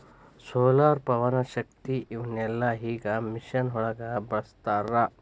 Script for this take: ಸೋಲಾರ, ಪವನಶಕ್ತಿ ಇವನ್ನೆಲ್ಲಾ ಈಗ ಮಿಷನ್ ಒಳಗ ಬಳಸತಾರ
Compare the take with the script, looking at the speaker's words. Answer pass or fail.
pass